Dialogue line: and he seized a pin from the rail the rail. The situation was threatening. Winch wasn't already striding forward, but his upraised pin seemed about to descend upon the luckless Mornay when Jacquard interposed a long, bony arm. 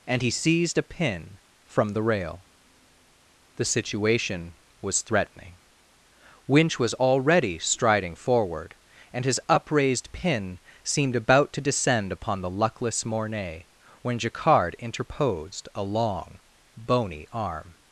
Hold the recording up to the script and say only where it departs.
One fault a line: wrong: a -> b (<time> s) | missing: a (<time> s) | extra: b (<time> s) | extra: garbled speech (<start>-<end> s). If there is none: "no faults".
missing: rail The (3.6 s)
wrong: wasn't -> was (6.8 s)
wrong: but -> and (9.1 s)